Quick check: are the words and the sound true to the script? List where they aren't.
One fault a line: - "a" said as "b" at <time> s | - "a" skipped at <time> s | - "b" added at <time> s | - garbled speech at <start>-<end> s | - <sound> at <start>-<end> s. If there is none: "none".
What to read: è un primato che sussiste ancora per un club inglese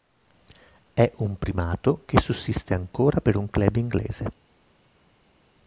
none